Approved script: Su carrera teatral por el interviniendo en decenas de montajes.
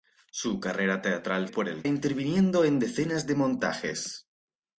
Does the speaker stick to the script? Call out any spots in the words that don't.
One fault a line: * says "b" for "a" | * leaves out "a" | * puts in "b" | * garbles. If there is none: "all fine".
all fine